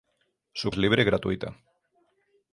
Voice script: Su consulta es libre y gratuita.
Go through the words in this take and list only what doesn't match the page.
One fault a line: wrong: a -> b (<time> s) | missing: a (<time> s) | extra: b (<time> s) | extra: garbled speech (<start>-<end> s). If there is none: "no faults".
missing: consulta (0.7 s)